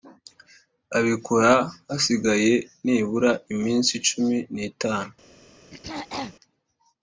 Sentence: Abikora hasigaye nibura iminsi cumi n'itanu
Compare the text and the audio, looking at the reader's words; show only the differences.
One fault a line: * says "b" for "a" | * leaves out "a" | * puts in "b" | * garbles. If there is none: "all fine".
all fine